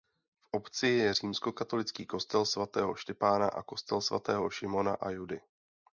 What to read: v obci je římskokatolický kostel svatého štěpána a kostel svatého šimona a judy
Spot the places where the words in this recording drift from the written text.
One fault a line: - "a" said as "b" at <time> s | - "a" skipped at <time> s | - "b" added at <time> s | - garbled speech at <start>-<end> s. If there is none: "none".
none